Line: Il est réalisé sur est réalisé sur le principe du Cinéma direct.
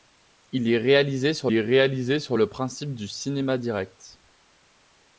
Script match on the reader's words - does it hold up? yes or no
yes